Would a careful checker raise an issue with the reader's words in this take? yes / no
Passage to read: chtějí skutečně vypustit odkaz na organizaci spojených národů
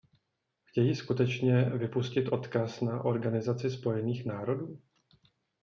no